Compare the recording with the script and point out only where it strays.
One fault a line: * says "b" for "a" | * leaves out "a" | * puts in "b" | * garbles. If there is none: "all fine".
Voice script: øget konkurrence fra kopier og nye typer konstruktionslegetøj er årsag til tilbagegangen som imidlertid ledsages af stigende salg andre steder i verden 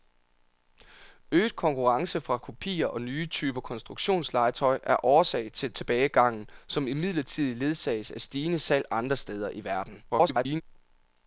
* garbles